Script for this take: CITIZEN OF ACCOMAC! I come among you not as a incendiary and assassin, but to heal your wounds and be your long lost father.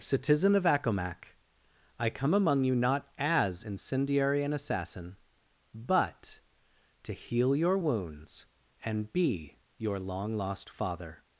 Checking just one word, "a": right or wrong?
wrong